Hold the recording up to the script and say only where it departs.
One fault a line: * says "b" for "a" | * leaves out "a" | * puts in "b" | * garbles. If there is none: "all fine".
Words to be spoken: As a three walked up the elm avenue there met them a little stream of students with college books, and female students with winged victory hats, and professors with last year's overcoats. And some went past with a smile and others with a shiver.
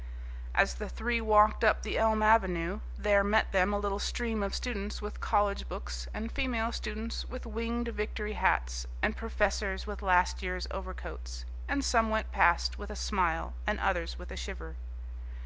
* says "the" for "a"